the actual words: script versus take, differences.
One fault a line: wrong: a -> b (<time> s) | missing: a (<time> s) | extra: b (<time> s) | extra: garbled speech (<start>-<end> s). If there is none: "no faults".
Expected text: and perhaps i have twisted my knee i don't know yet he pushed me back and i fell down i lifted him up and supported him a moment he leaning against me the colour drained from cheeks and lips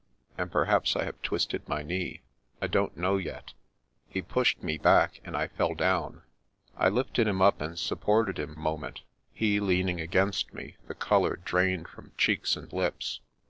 no faults